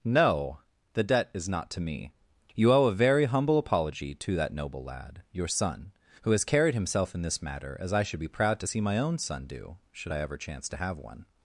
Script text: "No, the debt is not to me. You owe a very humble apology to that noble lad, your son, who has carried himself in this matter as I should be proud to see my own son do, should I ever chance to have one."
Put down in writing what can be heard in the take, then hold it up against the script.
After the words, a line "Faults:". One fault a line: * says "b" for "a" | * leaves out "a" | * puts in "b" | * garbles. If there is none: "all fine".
"No, the debt is not to me. You owe a very humble apology to that noble lad, your son, who has carried himself in this matter as I should be proud to see my own son do, should I ever chance to have one."
Faults:
all fine